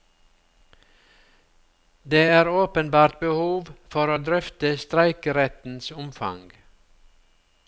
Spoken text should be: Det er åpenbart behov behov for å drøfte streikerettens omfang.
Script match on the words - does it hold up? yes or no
no